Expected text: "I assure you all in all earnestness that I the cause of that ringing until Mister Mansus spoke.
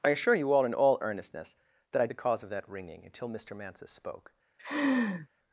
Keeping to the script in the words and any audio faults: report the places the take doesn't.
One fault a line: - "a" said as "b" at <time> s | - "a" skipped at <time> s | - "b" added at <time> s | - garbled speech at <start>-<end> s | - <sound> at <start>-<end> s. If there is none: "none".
- laugh at 4.6-5.3 s